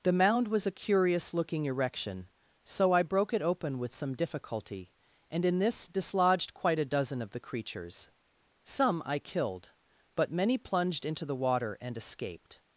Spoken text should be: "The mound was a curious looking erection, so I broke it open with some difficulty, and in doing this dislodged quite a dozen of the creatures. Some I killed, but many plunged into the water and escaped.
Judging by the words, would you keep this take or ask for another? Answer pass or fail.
fail